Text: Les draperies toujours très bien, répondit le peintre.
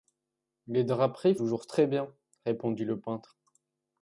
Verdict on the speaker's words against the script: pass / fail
pass